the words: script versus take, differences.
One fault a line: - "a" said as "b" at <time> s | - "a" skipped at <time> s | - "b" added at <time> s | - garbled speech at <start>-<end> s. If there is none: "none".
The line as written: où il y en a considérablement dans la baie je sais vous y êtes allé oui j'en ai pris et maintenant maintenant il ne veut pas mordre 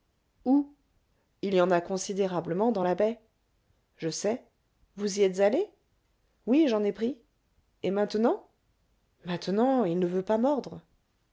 none